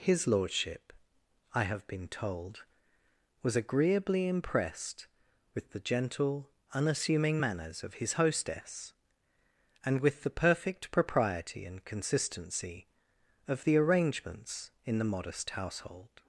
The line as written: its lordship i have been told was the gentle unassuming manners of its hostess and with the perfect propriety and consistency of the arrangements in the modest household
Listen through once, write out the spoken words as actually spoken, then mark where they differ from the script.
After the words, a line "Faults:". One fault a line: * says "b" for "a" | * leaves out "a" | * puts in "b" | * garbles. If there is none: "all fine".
his lordship i have been told was agreeably impressed with the gentle unassuming manners of his hostess and with the perfect propriety and consistency of the arrangements in the modest household
Faults:
* says "his" for "its"
* puts in "agreeably impressed with"
* says "his" for "its"